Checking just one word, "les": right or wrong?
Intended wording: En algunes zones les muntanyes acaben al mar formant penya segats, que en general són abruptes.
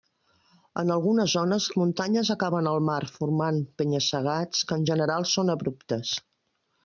wrong